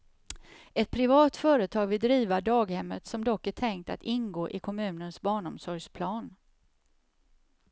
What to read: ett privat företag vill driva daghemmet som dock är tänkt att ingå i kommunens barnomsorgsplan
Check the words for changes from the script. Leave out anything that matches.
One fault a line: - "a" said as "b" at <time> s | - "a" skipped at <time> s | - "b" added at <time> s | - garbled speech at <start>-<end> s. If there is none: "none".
none